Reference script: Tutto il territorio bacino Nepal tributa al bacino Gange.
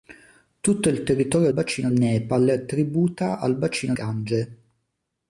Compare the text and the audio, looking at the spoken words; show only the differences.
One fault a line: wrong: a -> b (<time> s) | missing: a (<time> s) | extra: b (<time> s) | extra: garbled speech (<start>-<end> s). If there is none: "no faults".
no faults